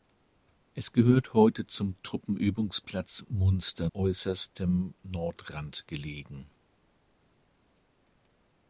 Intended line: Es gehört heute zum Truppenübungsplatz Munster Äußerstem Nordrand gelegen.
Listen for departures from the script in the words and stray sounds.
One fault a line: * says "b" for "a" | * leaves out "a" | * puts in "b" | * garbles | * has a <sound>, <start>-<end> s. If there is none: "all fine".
all fine